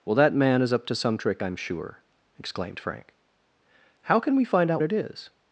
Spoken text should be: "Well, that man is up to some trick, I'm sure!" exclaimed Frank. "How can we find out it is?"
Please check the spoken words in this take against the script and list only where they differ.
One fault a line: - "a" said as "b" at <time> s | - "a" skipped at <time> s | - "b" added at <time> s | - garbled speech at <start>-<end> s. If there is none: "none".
none